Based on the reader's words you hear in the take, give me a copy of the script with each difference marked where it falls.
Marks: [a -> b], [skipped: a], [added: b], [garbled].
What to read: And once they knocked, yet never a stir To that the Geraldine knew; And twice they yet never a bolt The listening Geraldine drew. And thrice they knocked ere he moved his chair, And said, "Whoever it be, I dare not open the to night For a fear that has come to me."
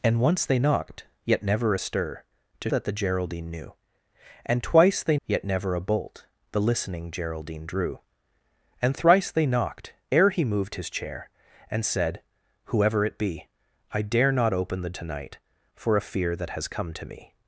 And once they knocked, yet never a stir To that the Geraldine knew; And twice they yet never a bolt The listening Geraldine drew. And thrice they knocked ere he moved his chair, And said, "Whoever it be, I dare not open the to night For a fear that has come to me."